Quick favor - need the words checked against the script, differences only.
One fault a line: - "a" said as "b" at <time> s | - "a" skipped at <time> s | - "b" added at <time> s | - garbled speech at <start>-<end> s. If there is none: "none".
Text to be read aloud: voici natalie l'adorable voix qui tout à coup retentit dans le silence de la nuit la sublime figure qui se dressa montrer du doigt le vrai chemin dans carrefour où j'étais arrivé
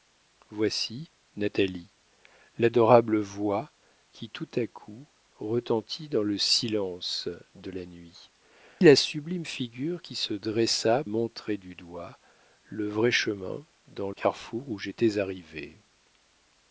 none